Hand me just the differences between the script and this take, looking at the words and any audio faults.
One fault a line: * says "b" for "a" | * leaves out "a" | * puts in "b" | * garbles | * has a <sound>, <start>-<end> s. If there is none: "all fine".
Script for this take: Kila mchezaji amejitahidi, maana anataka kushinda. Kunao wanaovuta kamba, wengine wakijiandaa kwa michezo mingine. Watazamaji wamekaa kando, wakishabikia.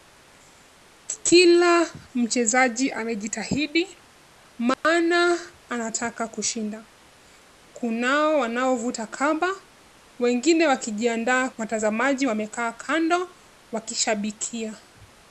* has a dropout, 4.7-4.8 s
* leaves out "kwa michezo mingine"